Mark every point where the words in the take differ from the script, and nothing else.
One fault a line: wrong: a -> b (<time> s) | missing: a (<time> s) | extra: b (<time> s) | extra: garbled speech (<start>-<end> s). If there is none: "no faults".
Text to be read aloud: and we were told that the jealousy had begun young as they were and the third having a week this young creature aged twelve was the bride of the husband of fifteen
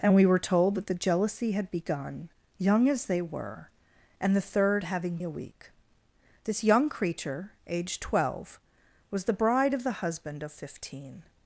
no faults